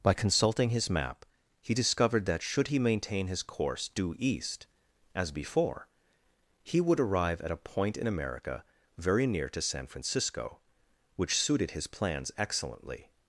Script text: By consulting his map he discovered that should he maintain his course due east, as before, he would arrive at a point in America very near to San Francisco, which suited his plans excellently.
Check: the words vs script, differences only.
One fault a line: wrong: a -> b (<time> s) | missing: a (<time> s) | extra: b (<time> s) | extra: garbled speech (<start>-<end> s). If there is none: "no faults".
no faults